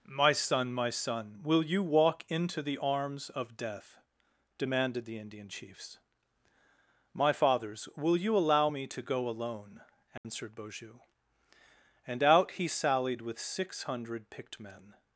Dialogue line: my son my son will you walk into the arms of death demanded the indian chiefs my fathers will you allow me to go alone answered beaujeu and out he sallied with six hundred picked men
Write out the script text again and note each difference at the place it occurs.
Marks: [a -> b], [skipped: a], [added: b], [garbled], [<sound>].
my son my son will you walk into the arms of death demanded the indian chiefs my fathers will you allow me to go alone answered [dropout] beaujeu and out he sallied with six hundred picked men